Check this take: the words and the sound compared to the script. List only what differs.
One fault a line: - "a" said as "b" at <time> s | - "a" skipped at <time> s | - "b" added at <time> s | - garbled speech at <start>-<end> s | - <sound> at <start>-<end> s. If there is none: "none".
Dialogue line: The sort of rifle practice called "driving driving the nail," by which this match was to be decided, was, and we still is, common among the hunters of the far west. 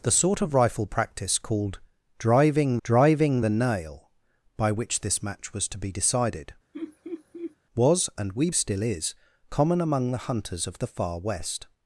- laugh at 6.7-7.6 s